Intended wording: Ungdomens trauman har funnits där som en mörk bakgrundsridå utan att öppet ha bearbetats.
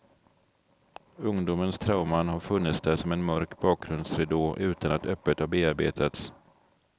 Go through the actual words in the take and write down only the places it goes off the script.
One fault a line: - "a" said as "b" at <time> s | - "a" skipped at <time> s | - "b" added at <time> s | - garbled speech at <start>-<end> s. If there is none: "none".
none